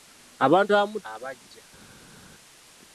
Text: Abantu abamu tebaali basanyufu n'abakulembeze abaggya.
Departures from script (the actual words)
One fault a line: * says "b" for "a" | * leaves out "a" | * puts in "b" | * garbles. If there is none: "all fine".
* leaves out "tebaali basanyufu n'abakulembeze"